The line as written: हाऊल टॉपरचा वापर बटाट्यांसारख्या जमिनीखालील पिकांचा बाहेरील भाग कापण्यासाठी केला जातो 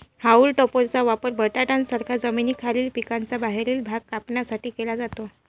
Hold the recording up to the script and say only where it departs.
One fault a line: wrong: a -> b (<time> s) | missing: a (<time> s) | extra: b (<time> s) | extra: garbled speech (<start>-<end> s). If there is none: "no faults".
no faults